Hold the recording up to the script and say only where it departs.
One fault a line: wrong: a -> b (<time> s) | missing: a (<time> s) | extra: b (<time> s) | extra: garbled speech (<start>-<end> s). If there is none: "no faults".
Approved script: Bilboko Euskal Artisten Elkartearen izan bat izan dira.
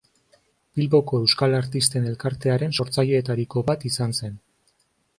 wrong: izan -> sortzaileetariko (2.8 s)
wrong: dira -> zen (4.2 s)